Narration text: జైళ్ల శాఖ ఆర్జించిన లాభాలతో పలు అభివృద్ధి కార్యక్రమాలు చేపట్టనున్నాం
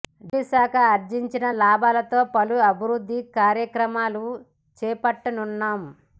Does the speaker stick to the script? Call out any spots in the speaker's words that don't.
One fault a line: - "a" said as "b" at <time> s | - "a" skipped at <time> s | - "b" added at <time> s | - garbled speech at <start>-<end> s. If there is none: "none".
none